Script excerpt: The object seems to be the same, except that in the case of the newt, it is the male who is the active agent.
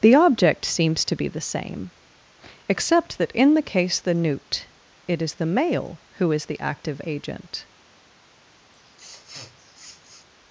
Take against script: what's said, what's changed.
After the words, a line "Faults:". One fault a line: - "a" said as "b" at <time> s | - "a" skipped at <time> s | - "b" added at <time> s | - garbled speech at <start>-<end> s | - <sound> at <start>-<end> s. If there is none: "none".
The object seems to be the same, except that in the case the newt, it is the male who is the active agent.
Faults:
- "of" skipped at 4.0 s
- sniff at 8.7-10.3 s